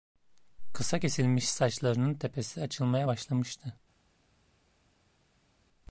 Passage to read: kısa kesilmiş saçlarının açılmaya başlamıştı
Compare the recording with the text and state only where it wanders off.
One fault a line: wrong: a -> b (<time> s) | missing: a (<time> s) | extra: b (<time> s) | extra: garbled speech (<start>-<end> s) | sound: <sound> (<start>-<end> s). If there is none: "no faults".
extra: tepesi (2.1 s)